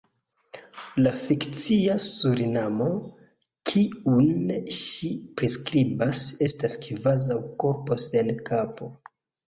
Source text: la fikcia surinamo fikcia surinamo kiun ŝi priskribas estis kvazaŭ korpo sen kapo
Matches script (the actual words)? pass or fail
fail